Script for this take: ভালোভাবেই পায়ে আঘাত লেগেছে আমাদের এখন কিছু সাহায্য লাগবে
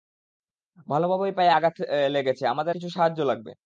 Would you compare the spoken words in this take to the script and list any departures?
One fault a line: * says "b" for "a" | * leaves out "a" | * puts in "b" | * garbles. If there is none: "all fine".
* leaves out "এখন"